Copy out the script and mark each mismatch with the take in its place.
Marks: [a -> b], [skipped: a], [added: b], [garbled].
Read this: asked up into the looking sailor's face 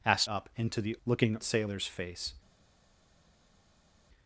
asked up into the looking sailor's face